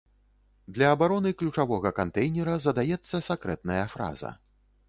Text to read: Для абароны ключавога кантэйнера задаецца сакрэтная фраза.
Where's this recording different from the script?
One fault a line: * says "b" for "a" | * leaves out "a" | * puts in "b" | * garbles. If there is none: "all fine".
all fine